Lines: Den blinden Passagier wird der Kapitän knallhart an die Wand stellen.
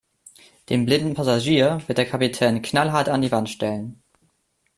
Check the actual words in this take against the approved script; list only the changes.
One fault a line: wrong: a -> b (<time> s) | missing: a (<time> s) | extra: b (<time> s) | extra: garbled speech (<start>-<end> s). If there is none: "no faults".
no faults